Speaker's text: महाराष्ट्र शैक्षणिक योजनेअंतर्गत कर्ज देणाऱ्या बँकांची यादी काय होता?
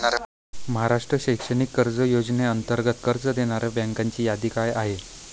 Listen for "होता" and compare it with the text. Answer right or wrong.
wrong